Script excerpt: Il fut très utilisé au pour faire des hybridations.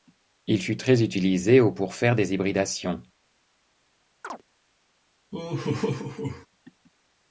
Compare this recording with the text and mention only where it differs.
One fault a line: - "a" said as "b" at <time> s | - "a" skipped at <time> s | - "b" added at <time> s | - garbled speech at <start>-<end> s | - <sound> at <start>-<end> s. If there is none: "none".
- chirp at 4.2-4.4 s
- laugh at 5.3-6.5 s